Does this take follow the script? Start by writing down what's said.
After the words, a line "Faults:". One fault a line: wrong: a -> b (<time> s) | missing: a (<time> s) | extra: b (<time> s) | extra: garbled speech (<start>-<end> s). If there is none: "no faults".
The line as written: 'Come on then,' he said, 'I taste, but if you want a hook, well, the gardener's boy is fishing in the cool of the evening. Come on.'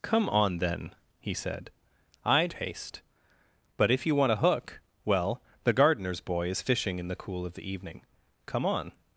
'Come on then,' he said, 'I taste, but if you want a hook, well, the gardener's boy is fishing in the cool of the evening. Come on.'
Faults:
no faults